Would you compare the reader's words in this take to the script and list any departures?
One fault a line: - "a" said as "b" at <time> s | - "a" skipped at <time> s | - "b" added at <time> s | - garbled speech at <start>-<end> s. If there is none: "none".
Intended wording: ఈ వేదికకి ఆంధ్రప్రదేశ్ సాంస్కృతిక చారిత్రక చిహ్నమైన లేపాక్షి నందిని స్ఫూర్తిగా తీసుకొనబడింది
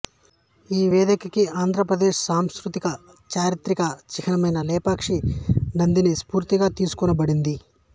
none